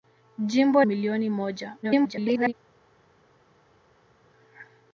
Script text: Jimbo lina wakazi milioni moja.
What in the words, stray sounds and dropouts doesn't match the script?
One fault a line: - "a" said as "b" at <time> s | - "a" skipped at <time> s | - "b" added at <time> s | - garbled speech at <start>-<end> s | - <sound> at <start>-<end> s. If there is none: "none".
- "lina wakazi" skipped at 0.8 s
- garbled speech at 1.8-2.5 s